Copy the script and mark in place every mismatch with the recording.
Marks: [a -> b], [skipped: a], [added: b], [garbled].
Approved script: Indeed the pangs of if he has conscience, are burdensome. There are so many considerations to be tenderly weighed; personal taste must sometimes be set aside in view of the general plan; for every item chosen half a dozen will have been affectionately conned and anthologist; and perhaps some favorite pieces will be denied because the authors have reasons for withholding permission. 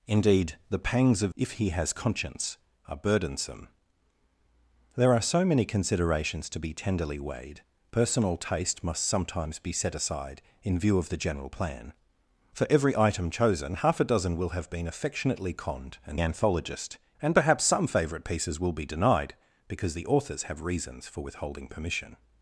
Indeed the pangs of if he has conscience, are burdensome. There are so many considerations to be tenderly weighed; personal taste must sometimes be set aside in view of the general plan; for every item chosen half a dozen will have been affectionately conned and anthologist; and perhaps some favorite pieces will be denied because the authors have reasons for withholding permission.